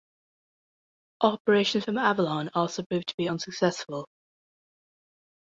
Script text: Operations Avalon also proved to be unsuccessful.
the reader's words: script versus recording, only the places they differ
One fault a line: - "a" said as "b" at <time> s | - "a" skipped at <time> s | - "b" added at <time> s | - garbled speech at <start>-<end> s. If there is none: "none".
- "from" added at 1.9 s